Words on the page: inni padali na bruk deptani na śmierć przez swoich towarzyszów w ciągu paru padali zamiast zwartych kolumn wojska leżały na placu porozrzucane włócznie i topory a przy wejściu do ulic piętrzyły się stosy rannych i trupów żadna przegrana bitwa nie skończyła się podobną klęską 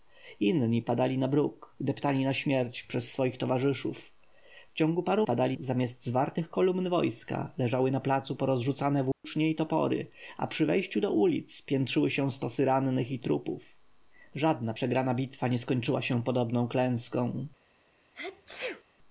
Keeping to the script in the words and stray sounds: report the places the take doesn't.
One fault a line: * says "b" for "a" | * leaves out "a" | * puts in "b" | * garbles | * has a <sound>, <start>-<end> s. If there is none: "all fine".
* has a dropout, 9.1-9.2 s
* has a sneeze, 18.1-18.8 s